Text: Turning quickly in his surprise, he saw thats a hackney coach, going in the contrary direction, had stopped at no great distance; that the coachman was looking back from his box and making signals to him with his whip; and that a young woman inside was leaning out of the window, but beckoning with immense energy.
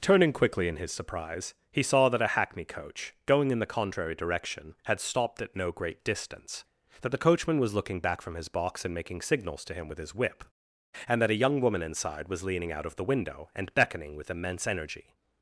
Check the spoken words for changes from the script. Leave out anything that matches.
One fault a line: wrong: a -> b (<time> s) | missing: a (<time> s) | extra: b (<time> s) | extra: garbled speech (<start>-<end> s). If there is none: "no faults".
wrong: thats -> that (2.1 s)
wrong: but -> and (13.6 s)